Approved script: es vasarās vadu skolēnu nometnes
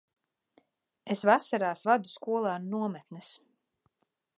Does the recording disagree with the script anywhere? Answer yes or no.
no